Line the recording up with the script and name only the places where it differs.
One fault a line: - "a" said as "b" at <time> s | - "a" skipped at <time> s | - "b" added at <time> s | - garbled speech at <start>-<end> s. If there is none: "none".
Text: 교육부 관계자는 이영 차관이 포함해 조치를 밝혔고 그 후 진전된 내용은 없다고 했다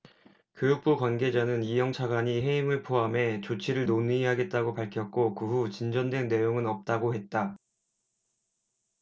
- "해임을" added at 2.4 s
- "논의하겠다고" added at 3.9 s